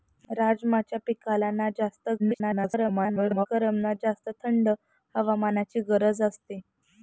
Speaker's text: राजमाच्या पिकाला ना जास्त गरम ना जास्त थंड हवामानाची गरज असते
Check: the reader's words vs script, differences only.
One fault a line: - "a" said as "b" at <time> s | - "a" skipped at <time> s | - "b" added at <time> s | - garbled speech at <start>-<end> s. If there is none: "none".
- garbled speech at 2.2-3.5 s